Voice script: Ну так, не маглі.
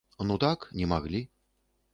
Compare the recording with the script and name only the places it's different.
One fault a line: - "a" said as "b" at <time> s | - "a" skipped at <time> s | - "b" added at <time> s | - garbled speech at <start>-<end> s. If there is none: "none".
none